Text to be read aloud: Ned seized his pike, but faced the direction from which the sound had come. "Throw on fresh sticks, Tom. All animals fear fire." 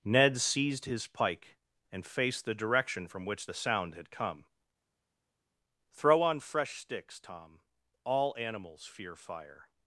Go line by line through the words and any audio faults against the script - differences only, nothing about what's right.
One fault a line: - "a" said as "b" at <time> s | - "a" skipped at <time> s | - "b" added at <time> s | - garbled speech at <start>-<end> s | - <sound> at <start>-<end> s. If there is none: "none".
- "but" said as "and" at 1.9 s